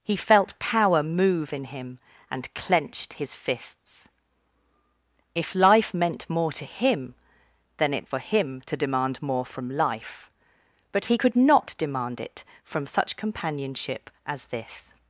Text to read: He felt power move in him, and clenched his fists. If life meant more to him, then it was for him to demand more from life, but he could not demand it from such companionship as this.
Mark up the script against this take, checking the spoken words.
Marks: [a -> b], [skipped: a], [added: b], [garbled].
He felt power move in him, and clenched his fists. If life meant more to him, then it [skipped: was] for him to demand more from life, but he could not demand it from such companionship as this.